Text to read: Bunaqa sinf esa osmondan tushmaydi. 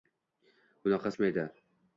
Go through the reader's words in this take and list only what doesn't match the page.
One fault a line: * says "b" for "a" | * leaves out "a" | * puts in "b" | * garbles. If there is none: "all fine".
* leaves out "sinf esa osmondan"